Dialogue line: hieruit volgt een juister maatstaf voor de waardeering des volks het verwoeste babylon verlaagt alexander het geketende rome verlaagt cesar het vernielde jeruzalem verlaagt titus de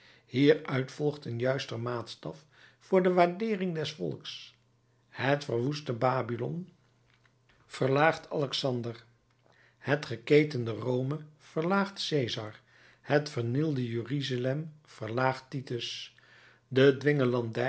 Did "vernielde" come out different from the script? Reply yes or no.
no